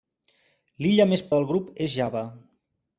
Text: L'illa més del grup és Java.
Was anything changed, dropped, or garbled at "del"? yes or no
no